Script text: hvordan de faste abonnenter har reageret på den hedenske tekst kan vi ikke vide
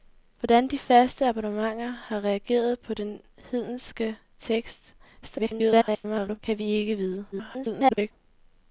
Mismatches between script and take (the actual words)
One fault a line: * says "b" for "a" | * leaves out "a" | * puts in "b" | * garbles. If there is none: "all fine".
* garbles
* garbles